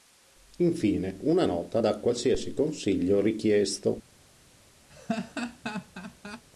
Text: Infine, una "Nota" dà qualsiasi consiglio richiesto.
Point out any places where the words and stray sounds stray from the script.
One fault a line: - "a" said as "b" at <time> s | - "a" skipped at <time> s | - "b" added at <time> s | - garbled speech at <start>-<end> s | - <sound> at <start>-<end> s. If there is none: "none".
- laugh at 4.9-6.4 s